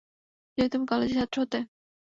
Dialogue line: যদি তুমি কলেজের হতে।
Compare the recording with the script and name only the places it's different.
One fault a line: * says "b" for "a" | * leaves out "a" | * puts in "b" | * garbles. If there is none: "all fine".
* puts in "ছাত্র"